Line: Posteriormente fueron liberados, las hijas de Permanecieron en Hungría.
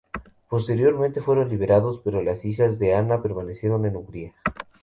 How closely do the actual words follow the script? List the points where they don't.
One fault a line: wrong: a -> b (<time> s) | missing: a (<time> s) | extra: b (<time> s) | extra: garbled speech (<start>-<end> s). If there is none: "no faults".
extra: pero (2.0 s)
extra: Ana (3.0 s)